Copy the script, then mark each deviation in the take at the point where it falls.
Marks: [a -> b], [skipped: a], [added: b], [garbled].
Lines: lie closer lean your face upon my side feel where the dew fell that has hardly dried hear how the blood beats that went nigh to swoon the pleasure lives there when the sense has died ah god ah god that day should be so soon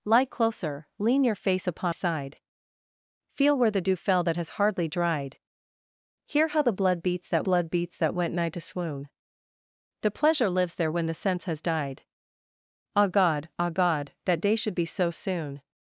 lie closer lean your face upon [skipped: my] side feel where the dew fell that has hardly dried hear how the blood beats that [added: blood beats that] went nigh to swoon the pleasure lives there when the sense has died ah god ah god that day should be so soon